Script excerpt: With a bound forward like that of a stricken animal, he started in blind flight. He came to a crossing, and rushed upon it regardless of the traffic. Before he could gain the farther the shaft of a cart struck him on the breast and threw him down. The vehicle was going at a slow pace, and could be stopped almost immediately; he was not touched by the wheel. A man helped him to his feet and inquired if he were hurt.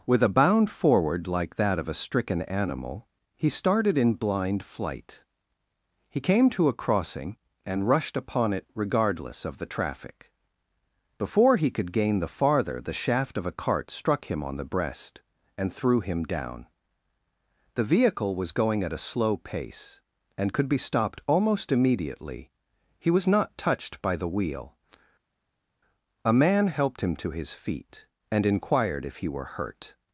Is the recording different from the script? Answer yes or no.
no